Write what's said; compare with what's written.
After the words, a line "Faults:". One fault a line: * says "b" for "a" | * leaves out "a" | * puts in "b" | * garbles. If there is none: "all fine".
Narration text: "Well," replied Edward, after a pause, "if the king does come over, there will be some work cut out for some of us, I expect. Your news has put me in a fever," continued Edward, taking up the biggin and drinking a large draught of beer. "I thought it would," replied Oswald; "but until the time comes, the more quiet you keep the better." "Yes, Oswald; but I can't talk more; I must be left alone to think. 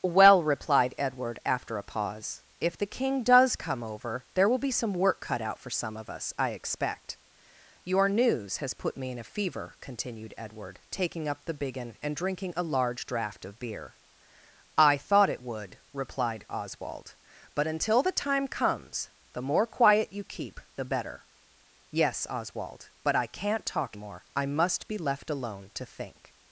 "Well," replied Edward, after a pause, "if the king does come over, there will be some work cut out for some of us, I expect. Your news has put me in a fever," continued Edward, taking up the biggin and drinking a large draught of beer. "I thought it would," replied Oswald; "but until the time comes, the more quiet you keep the better." "Yes, Oswald; but I can't talk more; I must be left alone to think.
Faults:
all fine